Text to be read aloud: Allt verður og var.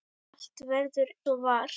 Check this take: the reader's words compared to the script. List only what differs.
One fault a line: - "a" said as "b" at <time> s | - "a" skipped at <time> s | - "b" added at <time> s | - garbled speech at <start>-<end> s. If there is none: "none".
none